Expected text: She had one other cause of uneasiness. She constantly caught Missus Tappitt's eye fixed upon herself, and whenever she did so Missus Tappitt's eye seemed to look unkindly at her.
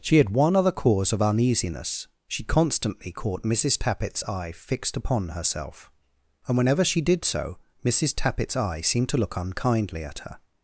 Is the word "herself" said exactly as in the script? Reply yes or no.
yes